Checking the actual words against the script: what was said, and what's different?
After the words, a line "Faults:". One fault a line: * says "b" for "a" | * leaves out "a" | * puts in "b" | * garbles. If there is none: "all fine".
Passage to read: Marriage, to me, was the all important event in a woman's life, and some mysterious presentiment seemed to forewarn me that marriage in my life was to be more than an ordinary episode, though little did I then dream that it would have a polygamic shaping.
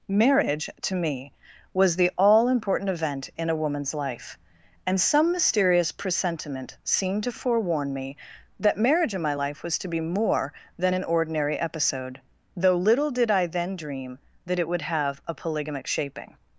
Marriage, to me, was the all important event in a woman's life, and some mysterious presentiment seemed to forewarn me that marriage in my life was to be more than an ordinary episode, though little did I then dream that it would have a polygamic shaping.
Faults:
all fine